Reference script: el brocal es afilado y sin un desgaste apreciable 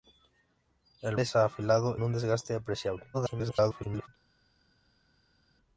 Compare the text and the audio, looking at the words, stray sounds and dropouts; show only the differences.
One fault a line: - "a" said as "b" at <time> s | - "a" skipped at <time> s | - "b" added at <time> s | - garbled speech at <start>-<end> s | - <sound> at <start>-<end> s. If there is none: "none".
- "brocal" skipped at 1.2 s
- "y sin" skipped at 2.0 s
- garbled speech at 3.1-4.1 s